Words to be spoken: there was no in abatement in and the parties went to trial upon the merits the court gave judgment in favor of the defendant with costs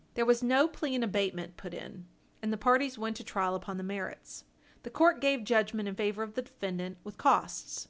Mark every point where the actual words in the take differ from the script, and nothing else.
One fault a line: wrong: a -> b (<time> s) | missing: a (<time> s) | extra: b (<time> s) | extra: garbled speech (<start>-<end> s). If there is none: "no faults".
extra: plea (0.7 s)
extra: put (1.6 s)